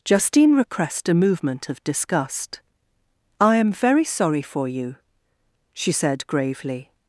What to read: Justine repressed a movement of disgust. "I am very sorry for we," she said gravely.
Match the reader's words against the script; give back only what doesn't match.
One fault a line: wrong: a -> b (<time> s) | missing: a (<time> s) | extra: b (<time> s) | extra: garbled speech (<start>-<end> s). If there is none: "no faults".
wrong: we -> you (4.7 s)